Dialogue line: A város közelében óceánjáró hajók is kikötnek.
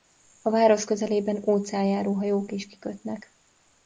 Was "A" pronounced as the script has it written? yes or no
yes